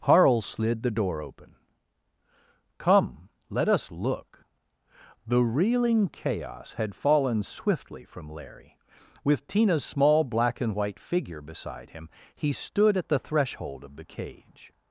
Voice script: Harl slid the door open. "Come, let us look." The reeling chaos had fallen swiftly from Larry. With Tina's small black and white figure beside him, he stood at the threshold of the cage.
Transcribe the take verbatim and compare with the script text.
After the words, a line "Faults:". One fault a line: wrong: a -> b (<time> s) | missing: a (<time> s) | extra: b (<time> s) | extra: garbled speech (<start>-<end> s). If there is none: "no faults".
Harl slid the door open. "Come, let us look." The reeling chaos had fallen swiftly from Larry. With Tina's small black and white figure beside him, he stood at the threshold of the cage.
Faults:
no faults